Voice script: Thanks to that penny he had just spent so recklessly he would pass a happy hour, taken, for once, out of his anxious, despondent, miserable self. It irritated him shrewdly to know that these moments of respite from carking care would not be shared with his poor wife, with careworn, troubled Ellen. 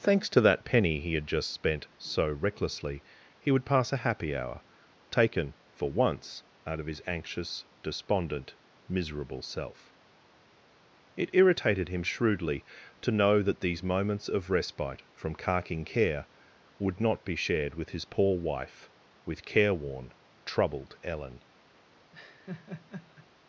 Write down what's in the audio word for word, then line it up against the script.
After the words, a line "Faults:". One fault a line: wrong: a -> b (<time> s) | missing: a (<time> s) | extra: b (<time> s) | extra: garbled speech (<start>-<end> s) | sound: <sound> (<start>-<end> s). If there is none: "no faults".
Thanks to that penny he had just spent so recklessly he would pass a happy hour, taken, for once, out of his anxious, despondent, miserable self. It irritated him shrewdly to know that these moments of respite from carking care would not be shared with his poor wife, with careworn, troubled Ellen.
Faults:
sound: laugh (22.1-23.3 s)